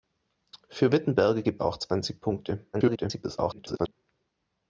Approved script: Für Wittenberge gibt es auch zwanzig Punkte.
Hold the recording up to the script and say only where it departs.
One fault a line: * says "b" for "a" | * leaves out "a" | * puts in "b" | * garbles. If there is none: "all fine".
* leaves out "es"
* garbles